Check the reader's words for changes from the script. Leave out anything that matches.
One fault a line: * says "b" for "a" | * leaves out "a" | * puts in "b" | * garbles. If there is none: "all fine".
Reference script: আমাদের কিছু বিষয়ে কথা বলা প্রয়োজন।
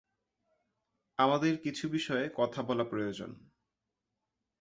all fine